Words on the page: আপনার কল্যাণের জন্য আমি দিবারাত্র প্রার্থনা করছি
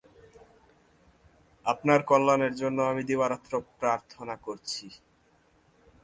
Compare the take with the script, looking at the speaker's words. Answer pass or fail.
pass